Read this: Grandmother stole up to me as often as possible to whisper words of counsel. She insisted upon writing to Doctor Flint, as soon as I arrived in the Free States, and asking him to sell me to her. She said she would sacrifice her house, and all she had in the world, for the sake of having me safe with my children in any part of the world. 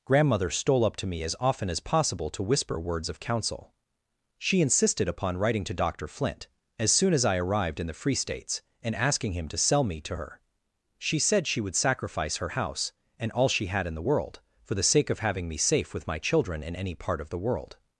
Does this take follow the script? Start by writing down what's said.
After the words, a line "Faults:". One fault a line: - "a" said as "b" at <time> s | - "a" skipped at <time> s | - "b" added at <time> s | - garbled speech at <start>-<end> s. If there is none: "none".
Grandmother stole up to me as often as possible to whisper words of counsel. She insisted upon writing to Doctor Flint, as soon as I arrived in the Free States, and asking him to sell me to her. She said she would sacrifice her house, and all she had in the world, for the sake of having me safe with my children in any part of the world.
Faults:
none